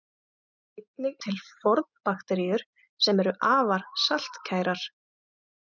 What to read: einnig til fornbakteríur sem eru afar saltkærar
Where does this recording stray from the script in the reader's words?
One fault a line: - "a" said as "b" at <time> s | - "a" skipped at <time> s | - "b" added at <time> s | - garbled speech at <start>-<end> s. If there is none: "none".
none